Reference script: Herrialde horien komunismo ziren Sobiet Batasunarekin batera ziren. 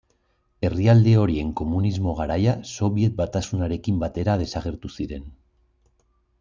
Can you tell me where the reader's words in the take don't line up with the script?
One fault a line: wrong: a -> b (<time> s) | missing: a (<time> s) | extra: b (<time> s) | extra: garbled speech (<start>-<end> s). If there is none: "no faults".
wrong: ziren -> garaia (2.2 s)
extra: desagertu (4.5 s)